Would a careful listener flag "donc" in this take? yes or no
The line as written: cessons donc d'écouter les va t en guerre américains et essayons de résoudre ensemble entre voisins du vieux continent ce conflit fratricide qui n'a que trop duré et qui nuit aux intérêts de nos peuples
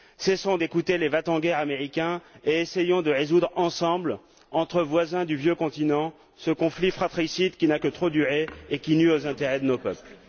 yes